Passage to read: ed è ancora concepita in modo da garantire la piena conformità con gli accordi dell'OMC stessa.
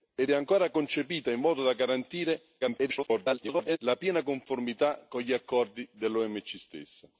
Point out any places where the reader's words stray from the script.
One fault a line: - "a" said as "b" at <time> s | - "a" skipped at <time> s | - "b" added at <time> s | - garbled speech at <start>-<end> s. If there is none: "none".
- garbled speech at 2.6-3.8 s